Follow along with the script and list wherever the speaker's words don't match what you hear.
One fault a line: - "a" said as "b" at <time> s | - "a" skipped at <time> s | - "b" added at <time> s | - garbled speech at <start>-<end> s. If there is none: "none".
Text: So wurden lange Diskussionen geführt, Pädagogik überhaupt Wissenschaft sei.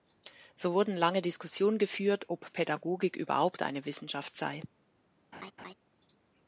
- "ob" added at 2.3 s
- "eine" added at 3.6 s